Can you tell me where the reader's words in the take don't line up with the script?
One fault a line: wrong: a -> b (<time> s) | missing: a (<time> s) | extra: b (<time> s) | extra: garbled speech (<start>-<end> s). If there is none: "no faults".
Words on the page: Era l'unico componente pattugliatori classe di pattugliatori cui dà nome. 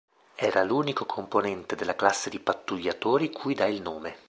wrong: pattugliatori -> della (1.8 s)
extra: il (3.7 s)